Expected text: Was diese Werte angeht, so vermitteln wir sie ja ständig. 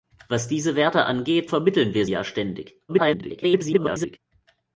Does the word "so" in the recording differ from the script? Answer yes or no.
yes